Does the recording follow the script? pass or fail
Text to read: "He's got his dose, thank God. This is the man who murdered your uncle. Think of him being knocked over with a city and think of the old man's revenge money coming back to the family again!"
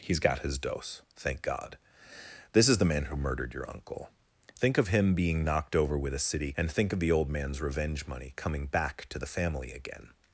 pass